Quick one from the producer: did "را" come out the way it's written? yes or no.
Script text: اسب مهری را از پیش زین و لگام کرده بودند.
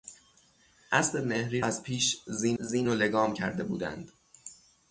no